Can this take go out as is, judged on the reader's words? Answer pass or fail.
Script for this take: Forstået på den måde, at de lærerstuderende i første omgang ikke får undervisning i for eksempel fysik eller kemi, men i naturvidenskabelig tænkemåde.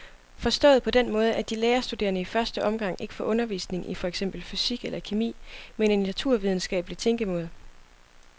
pass